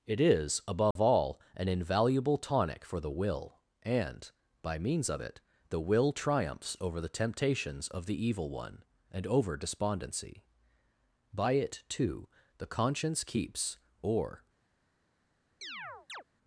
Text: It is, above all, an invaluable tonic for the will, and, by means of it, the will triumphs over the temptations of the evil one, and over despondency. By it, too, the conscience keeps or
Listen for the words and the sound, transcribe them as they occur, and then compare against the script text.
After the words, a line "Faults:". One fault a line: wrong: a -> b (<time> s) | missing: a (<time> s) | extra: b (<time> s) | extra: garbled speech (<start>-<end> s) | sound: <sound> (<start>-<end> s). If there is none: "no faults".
It is, above all, an invaluable tonic for the will, and, by means of it, the will triumphs over the temptations of the evil one, and over despondency. By it, too, the conscience keeps or
Faults:
sound: dropout (0.9-1.0 s)
sound: chirp (15.6-16.2 s)